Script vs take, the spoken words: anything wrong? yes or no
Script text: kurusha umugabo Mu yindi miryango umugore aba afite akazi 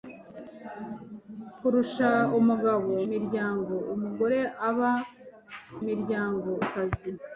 yes